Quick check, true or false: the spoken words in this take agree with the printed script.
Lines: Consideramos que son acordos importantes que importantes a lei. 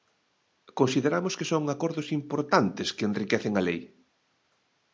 false